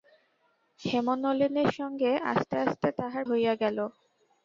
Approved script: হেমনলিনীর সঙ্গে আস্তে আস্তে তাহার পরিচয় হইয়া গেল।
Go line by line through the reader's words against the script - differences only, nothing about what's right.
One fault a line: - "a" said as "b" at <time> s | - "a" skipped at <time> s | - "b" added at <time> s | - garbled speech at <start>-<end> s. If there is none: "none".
- "পরিচয়" skipped at 3.2 s